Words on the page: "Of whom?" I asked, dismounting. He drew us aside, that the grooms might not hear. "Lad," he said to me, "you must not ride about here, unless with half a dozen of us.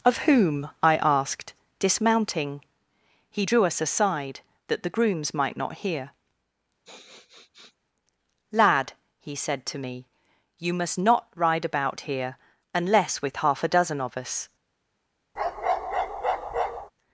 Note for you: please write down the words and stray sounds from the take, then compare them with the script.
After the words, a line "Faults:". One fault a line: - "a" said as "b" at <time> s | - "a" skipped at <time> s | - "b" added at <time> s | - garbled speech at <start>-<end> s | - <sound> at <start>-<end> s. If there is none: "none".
"Of whom?" I asked, dismounting. He drew us aside, that the grooms might not hear. "Lad," he said to me, "you must not ride about here, unless with half a dozen of us.
Faults:
- sniff at 6.8-7.8 s
- bark at 15.4-16.9 s